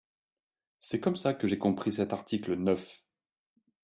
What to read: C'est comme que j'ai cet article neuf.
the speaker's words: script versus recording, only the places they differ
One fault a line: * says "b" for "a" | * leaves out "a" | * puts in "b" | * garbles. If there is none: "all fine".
* puts in "ça"
* puts in "compris"